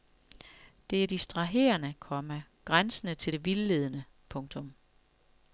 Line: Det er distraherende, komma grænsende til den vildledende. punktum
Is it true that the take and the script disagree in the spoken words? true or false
true